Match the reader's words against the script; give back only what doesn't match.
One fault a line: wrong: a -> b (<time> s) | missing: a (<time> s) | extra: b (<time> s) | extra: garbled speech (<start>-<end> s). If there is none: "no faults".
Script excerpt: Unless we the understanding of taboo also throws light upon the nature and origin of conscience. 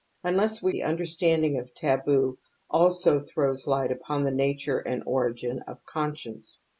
no faults